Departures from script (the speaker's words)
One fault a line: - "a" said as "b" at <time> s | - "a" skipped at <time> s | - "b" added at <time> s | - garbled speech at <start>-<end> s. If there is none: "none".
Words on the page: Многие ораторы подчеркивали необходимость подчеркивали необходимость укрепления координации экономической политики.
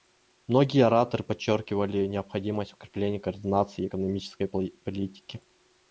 - "подчеркивали необходимость" skipped at 2.7 s